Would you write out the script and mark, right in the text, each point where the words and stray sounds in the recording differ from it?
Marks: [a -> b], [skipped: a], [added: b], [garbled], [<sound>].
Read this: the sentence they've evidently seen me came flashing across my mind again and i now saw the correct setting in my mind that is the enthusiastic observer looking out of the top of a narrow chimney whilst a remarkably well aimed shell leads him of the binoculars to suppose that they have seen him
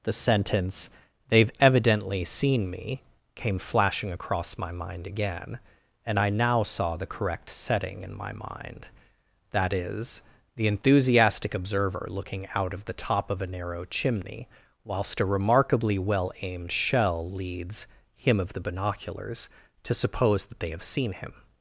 the sentence they've evidently seen me came flashing across my mind again and i now saw the correct setting in my mind that is the enthusiastic observer looking out of the top of a narrow chimney whilst a remarkably well aimed shell leads him of the binoculars to suppose that they have seen him